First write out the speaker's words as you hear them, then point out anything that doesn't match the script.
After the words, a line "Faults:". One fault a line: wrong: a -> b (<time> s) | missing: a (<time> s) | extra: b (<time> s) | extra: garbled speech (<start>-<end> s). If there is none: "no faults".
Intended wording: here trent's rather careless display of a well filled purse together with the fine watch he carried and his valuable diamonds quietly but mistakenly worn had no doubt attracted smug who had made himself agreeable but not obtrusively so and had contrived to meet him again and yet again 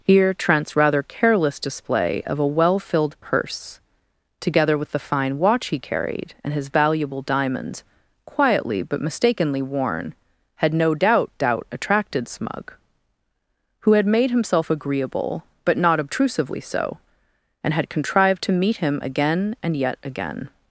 here trent's rather careless display of a well filled purse together with the fine watch he carried and his valuable diamonds quietly but mistakenly worn had no doubt doubt attracted smug who had made himself agreeable but not obtrusively so and had contrived to meet him again and yet again
Faults:
extra: doubt (11.4 s)